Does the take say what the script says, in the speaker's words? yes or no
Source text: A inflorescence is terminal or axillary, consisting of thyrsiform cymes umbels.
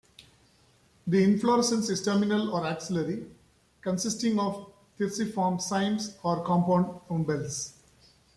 no